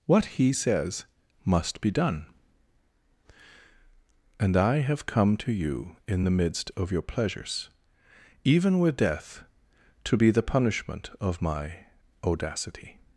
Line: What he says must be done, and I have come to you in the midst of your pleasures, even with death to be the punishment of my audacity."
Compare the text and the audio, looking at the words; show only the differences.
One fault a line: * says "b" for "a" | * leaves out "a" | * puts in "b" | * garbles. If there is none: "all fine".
all fine